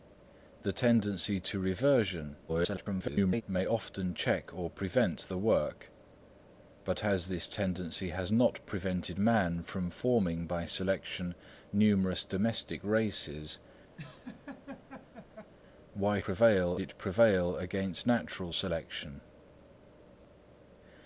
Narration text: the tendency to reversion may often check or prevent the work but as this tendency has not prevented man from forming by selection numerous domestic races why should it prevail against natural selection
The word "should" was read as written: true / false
false